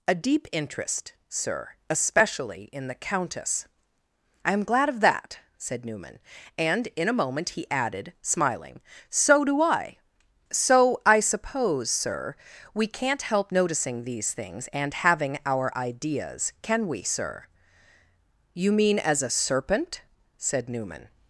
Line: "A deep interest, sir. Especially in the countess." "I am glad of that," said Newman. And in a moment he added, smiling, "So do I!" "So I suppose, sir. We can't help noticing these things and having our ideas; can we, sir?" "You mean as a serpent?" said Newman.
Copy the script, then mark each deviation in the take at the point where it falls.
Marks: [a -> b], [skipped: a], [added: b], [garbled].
"A deep interest, sir. Especially in the countess." "I am glad of that," said Newman. And in a moment he added, smiling, "So do I!" "So I suppose, sir. We can't help noticing these things and having our ideas; can we, sir?" "You mean as a serpent?" said Newman.